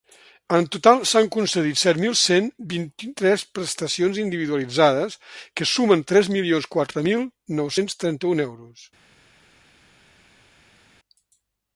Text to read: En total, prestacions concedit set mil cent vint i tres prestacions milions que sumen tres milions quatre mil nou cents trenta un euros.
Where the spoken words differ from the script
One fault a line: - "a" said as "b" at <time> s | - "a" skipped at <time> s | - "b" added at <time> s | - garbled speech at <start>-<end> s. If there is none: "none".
- "prestacions" said as "s'han" at 1.1 s
- "milions" said as "individualitzades" at 4.2 s